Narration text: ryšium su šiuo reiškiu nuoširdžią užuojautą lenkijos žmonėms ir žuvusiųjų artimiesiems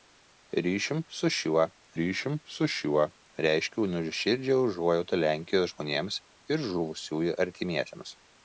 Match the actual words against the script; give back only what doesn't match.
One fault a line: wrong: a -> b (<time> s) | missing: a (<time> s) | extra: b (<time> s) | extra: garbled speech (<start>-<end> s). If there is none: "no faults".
extra: ryšium su šiuo (2.0 s)